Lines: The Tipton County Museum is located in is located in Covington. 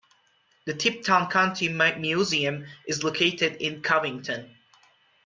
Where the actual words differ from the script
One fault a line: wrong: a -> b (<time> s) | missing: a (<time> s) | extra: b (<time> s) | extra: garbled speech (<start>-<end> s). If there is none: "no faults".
missing: is located in (3.8 s)